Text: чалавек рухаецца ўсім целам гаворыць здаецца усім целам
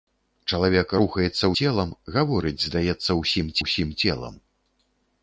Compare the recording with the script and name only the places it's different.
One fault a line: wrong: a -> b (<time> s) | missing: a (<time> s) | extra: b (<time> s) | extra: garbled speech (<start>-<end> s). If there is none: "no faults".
missing: ўсім (1.5 s)
extra: усім (3.6 s)